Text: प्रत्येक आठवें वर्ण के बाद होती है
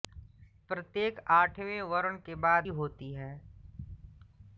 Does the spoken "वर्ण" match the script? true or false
true